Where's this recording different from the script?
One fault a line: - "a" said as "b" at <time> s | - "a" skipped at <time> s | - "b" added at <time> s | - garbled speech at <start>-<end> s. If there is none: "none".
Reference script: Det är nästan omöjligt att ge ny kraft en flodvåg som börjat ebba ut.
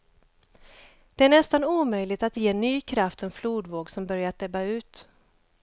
none